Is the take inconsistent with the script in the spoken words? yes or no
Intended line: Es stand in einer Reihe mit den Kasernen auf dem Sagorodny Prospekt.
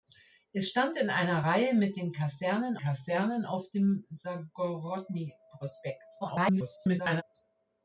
yes